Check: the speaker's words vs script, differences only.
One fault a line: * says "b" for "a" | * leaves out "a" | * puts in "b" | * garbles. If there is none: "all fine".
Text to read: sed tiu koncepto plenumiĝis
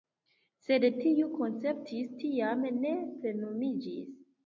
* puts in "tiam ne"